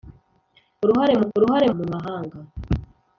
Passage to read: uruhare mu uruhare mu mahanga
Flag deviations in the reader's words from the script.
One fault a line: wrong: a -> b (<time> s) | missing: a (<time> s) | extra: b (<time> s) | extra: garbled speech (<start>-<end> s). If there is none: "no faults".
no faults